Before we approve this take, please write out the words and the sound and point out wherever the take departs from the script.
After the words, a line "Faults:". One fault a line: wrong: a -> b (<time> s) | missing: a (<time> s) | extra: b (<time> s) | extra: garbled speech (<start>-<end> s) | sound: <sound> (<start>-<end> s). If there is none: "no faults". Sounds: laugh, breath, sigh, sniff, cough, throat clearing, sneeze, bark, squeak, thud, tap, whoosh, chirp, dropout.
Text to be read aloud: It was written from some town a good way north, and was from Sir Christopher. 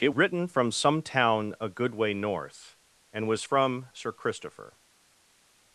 It written from some town a good way north, and was from Sir Christopher.
Faults:
missing: was (0.1 s)